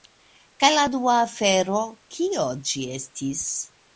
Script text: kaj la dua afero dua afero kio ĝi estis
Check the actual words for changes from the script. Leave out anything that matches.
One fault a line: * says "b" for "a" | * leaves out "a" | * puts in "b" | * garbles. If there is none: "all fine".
* leaves out "dua afero"